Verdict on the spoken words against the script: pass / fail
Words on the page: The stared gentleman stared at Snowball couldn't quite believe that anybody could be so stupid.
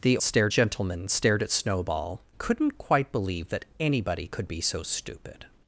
pass